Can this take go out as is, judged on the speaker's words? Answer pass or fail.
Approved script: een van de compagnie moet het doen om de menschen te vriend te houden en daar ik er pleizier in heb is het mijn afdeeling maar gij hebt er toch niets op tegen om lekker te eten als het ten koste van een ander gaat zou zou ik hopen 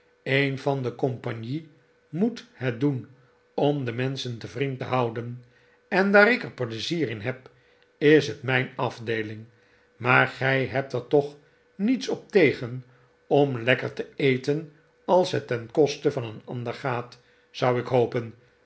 fail